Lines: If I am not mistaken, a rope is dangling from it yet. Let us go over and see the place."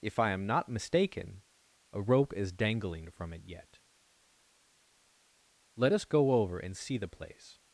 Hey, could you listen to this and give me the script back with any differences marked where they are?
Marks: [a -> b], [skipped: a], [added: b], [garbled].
If I am not mistaken, a rope is dangling from it yet. Let us go over and see the place."